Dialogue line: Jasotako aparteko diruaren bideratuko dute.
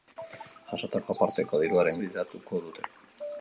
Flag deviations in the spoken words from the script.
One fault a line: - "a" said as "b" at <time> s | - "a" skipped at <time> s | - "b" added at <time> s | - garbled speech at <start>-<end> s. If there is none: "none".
none